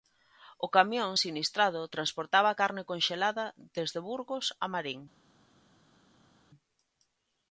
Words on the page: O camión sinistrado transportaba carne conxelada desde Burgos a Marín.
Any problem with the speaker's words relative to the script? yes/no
no